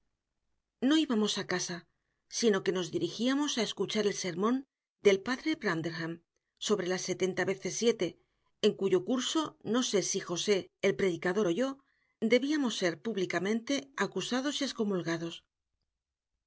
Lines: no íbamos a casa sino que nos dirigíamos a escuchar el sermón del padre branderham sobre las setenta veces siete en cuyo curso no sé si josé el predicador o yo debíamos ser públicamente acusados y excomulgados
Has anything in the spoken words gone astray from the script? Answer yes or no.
no